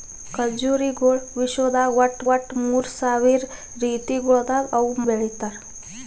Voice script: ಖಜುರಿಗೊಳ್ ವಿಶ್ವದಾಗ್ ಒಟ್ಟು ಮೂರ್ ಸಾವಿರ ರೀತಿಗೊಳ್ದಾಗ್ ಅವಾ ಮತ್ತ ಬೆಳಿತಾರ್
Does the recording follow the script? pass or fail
fail